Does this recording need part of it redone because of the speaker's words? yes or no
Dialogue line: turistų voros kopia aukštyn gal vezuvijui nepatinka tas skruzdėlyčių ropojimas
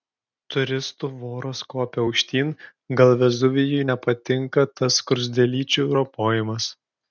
no